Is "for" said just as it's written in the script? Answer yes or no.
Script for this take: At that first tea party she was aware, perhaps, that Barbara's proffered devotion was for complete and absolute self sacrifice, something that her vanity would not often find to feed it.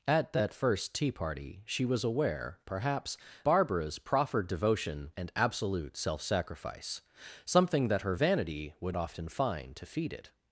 no